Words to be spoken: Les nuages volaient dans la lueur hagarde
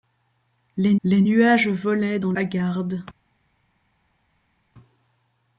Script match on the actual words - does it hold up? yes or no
no